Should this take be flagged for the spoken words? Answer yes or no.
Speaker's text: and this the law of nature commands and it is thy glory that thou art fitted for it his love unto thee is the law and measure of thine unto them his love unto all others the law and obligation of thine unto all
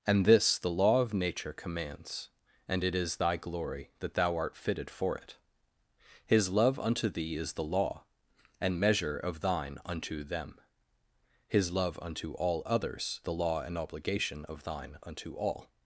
no